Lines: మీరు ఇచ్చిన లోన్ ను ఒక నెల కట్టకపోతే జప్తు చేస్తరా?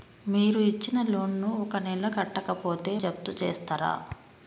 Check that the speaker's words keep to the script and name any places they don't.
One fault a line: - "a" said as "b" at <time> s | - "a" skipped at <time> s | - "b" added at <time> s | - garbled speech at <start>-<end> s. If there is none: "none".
none